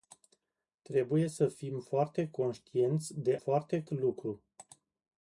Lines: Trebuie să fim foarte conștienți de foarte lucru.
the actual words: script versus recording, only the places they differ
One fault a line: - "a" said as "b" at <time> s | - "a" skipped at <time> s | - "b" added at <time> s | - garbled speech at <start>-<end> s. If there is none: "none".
none